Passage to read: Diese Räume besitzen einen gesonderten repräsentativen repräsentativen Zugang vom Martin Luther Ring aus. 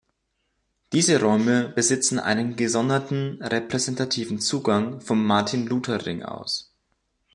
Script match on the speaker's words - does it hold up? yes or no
no